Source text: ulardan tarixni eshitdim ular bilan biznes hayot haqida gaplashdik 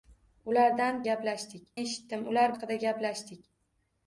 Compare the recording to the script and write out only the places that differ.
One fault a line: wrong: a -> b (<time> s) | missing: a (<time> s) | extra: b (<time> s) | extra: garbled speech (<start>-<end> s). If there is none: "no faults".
wrong: tarixni -> gaplashdik (1.1 s)
missing: bilan biznes hayot (2.6 s)